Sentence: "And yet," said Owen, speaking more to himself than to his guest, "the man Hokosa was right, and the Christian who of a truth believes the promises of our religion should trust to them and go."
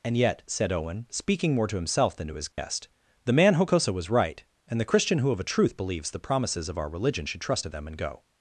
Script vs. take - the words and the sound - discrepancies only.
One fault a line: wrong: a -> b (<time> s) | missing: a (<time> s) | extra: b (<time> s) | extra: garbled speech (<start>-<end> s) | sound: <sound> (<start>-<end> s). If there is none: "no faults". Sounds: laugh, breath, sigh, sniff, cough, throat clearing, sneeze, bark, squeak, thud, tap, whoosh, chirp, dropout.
sound: dropout (2.5-2.6 s)